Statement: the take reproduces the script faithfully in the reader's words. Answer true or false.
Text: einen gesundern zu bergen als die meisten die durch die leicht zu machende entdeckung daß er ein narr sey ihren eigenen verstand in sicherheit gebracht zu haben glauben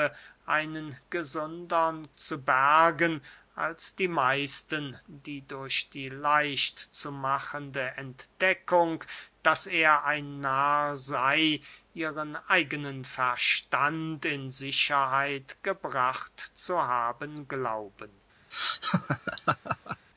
true